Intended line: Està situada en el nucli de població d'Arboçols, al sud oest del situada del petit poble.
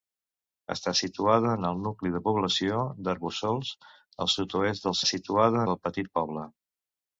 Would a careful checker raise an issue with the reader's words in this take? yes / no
no